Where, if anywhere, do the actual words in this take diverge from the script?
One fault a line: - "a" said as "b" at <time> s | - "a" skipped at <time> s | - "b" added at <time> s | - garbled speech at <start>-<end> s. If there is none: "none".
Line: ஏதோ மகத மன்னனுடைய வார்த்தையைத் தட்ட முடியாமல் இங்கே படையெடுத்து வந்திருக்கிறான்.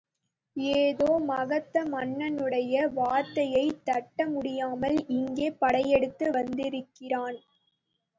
none